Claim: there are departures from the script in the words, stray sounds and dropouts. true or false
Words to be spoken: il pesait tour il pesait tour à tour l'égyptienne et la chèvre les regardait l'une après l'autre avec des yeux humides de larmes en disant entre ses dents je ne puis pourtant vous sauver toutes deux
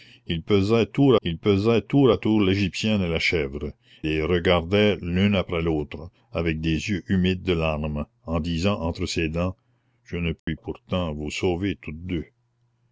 true